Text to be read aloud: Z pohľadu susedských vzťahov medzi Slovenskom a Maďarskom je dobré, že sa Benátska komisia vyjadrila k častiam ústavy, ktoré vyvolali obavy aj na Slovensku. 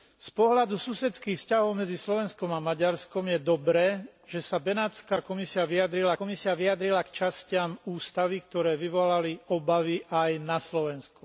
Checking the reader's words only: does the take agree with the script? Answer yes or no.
no